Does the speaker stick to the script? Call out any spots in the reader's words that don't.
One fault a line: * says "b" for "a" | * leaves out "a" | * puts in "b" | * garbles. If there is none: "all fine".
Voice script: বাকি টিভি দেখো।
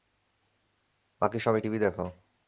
* puts in "সবাই"